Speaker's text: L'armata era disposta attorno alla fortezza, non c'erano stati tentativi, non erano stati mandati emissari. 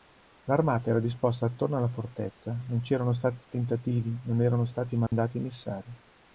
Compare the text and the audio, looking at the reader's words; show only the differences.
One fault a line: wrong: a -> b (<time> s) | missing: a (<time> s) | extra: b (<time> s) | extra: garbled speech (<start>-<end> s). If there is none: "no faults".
no faults